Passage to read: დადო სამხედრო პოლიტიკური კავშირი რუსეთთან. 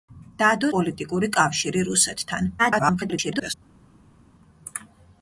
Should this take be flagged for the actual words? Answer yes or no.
yes